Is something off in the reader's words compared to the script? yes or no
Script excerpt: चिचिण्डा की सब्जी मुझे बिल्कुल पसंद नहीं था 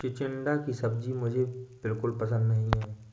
yes